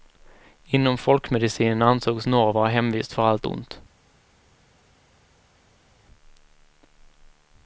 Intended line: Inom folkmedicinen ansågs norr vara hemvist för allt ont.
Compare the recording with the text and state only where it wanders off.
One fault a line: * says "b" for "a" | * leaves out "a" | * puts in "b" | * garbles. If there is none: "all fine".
all fine